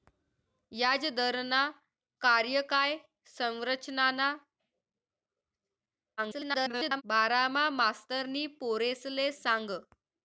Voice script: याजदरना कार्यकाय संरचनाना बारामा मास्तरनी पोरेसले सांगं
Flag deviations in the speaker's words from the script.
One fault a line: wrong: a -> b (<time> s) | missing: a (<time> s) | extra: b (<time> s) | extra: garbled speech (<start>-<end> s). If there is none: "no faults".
extra: garbled speech (6.2-7.0 s)